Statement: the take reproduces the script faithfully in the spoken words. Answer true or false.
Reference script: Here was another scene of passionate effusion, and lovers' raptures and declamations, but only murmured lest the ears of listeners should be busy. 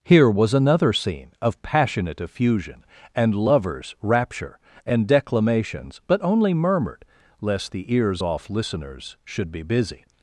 false